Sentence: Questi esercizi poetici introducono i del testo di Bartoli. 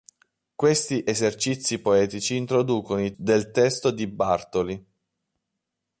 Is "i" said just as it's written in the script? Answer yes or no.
yes